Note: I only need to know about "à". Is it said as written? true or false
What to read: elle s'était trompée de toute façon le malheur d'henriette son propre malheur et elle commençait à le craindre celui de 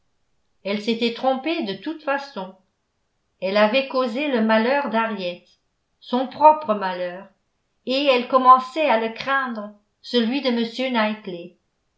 true